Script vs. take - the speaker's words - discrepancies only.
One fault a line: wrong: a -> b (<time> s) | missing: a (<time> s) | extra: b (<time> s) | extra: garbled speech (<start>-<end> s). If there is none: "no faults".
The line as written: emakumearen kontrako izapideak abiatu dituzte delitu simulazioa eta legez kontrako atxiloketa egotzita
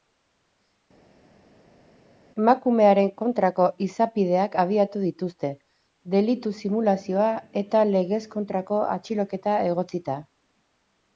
no faults